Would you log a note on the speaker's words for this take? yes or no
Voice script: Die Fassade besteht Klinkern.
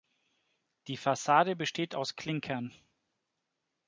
yes